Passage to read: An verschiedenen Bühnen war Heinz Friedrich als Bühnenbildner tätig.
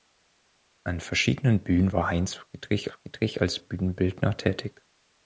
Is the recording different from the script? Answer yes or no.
yes